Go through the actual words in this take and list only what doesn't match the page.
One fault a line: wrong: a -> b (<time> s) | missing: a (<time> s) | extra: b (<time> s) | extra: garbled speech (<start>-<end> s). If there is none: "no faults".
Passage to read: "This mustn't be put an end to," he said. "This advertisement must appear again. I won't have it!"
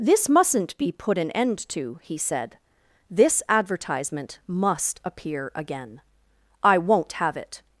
no faults